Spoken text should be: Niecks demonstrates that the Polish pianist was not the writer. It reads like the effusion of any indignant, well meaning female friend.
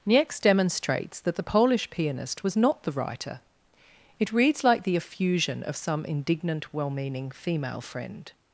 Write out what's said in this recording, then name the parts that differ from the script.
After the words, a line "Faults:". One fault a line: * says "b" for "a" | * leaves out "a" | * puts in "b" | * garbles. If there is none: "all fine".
Niecks demonstrates that the Polish pianist was not the writer. It reads like the effusion of some indignant, well meaning female friend.
Faults:
* says "some" for "any"